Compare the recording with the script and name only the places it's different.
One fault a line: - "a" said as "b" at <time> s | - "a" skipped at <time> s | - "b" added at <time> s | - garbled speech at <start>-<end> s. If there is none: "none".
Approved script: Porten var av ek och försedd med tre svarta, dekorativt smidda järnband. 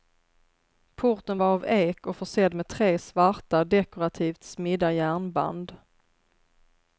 none